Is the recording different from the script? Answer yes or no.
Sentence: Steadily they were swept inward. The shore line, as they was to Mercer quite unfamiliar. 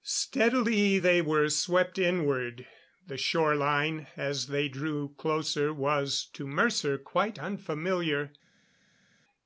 yes